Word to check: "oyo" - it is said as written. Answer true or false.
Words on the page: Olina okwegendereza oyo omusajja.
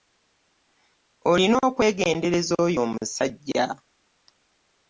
true